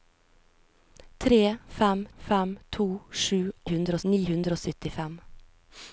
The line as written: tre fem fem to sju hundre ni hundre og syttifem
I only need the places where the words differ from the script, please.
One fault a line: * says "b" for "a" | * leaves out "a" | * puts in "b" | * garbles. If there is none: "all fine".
all fine